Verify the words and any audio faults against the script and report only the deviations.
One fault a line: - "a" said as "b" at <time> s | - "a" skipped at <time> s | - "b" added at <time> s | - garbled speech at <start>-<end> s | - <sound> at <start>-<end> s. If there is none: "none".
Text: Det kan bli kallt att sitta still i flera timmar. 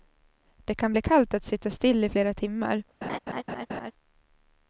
- laugh at 3.0-3.9 s